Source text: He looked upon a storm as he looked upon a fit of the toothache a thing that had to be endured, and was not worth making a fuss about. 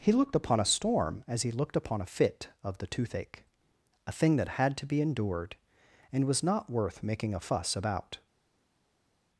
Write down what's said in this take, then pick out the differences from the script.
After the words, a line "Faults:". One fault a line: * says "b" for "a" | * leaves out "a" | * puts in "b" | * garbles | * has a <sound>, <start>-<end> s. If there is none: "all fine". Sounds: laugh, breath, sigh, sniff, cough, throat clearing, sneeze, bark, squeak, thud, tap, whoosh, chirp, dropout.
He looked upon a storm as he looked upon a fit of the toothache a thing that had to be endured, and was not worth making a fuss about.
Faults:
all fine